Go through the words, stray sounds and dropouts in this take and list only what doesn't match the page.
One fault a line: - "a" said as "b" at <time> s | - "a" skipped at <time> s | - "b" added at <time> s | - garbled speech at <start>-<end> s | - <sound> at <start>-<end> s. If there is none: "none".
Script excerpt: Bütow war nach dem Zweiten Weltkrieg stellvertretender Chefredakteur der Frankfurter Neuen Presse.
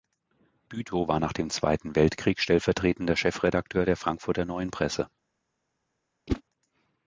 - whoosh at 6.3-6.4 s